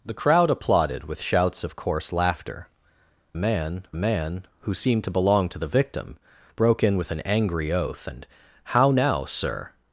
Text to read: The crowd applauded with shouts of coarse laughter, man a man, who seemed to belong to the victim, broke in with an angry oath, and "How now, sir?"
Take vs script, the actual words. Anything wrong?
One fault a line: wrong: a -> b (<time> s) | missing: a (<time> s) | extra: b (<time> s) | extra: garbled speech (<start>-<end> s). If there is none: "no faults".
no faults